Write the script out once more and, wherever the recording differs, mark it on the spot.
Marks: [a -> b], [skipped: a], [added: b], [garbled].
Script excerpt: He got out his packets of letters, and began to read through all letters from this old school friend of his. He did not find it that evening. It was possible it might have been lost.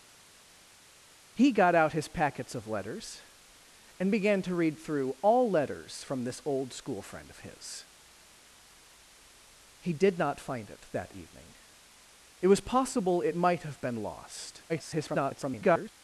He got out his packets of letters, and began to read through all letters from this old school friend of his. He did not find it that evening. It was possible it might have been lost. [garbled]